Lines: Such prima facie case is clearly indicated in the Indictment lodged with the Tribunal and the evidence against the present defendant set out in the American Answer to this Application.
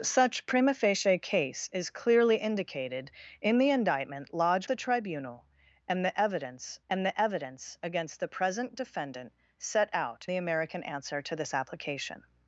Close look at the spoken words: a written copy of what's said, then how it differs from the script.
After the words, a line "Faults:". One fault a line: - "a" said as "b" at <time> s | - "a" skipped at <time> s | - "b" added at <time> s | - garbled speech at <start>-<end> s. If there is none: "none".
Such prima facie case is clearly indicated in the Indictment lodged the Tribunal and the evidence and the evidence against the present defendant set out the American Answer to this Application.
Faults:
- "with" skipped at 4.7 s
- "and the evidence" added at 6.9 s
- "in" skipped at 10.3 s